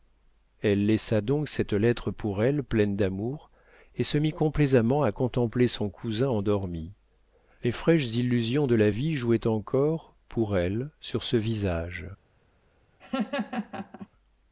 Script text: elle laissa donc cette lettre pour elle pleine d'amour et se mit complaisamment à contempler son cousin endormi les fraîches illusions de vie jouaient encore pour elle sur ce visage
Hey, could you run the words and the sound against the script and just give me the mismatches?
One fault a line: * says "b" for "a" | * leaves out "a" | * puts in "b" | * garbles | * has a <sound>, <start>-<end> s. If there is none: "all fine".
* puts in "la"
* has a laugh, 13.0-14.1 s